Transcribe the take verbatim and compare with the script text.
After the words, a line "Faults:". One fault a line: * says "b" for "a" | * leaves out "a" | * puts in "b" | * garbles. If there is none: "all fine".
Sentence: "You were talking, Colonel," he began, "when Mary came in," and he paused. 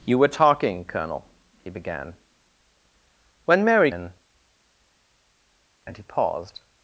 "You were talking, Colonel," he began, "when Mary in," and he paused.
Faults:
* leaves out "came"